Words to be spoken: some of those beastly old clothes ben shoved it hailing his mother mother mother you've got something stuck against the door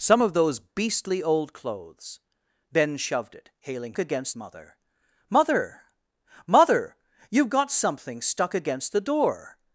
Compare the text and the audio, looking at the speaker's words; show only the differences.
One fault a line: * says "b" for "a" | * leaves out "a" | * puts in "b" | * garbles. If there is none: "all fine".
* says "against" for "his"